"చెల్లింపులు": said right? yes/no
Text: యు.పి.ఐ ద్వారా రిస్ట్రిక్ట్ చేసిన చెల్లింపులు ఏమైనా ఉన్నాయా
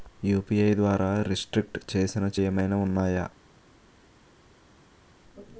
no